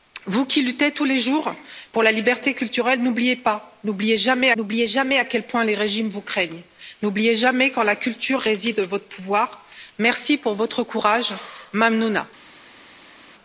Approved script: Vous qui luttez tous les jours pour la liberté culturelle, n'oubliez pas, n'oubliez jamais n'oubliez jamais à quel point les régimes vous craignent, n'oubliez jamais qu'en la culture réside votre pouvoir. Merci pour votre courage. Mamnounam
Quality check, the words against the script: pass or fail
pass